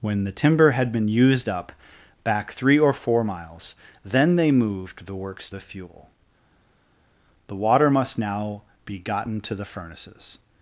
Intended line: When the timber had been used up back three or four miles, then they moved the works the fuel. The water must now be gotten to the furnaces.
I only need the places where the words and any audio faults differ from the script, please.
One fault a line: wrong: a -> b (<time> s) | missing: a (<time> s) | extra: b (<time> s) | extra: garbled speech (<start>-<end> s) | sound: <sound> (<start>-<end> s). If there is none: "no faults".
no faults